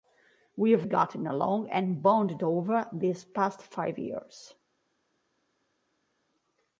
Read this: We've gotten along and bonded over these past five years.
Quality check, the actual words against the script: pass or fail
pass